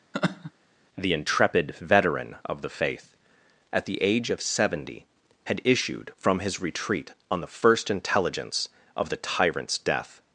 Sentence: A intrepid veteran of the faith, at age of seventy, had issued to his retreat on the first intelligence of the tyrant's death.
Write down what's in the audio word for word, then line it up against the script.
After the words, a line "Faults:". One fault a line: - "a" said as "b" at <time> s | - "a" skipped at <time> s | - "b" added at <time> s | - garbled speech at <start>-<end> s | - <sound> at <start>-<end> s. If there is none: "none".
The intrepid veteran of the faith, at the age of seventy, had issued from his retreat on the first intelligence of the tyrant's death.
Faults:
- laugh at 0.1-0.5 s
- "A" said as "The" at 1.0 s
- "the" added at 3.8 s
- "to" said as "from" at 6.2 s